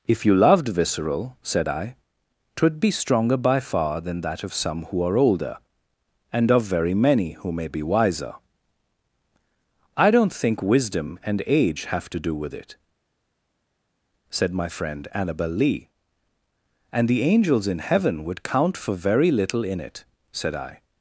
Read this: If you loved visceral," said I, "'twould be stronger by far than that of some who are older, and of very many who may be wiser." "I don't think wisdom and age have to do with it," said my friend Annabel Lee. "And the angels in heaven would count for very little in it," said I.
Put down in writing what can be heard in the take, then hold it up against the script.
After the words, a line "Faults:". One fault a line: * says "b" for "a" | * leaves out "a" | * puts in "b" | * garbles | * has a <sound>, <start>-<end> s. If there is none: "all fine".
If you loved visceral," said I, "'twould be stronger by far than that of some who are older, and of very many who may be wiser." "I don't think wisdom and age have to do with it," said my friend Annabel Lee. "And the angels in heaven would count for very little in it," said I.
Faults:
all fine